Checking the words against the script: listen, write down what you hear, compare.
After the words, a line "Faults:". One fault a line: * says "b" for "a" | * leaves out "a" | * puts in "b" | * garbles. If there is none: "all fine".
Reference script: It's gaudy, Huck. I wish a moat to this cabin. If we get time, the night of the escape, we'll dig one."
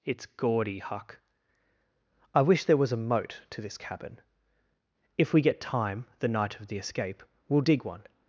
It's gaudy, Huck. I wish there was a moat to this cabin. If we get time, the night of the escape, we'll dig one."
Faults:
* puts in "there was"